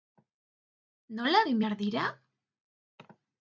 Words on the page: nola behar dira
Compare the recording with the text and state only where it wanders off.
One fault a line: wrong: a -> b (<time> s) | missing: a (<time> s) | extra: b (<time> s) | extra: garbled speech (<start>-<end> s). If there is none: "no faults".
extra: egin (1.4 s)